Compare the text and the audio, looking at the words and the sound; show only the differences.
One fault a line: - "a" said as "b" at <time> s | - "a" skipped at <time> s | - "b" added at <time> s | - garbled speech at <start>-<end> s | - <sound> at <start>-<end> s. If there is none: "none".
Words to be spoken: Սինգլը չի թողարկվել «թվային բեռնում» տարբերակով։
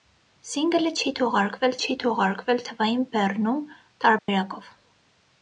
- "չի թողարկվել" added at 1.8 s
- dropout at 4.2-4.3 s